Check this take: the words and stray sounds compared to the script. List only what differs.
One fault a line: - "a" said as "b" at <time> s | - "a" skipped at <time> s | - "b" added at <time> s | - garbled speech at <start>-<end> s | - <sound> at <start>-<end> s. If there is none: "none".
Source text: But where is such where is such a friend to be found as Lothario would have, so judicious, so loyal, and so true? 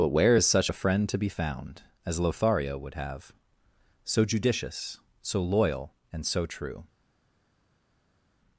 - "where is such" skipped at 0.7 s